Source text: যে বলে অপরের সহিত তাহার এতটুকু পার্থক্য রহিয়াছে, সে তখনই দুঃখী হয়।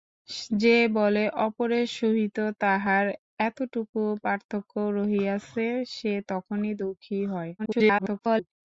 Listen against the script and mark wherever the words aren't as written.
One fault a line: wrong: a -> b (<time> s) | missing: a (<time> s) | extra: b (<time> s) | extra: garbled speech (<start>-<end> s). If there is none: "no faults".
extra: garbled speech (7.6-8.5 s)